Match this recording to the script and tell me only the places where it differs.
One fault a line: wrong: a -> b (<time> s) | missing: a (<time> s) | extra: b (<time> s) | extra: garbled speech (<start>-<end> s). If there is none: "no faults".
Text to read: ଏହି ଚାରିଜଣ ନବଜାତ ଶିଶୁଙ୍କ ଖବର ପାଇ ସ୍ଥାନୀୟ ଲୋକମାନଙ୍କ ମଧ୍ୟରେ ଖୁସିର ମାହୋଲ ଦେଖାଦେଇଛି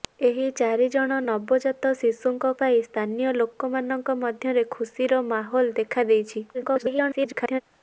missing: ଖବର (2.5 s)
extra: garbled speech (6.5-7.6 s)